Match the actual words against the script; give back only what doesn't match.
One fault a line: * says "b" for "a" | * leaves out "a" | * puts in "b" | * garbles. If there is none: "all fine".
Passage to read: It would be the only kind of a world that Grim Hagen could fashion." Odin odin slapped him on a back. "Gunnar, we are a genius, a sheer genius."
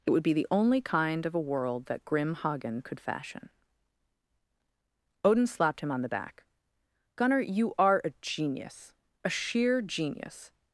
* leaves out "odin"
* says "the" for "a"
* says "you" for "we"